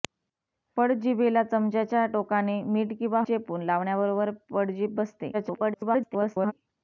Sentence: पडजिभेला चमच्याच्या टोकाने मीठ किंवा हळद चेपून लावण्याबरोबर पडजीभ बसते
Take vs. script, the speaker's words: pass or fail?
fail